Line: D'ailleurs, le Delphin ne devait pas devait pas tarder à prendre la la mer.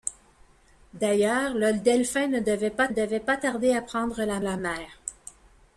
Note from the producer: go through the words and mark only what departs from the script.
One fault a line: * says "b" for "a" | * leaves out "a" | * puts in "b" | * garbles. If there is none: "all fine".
all fine